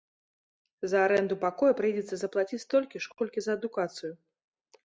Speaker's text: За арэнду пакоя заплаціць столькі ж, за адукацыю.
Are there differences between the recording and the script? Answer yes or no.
yes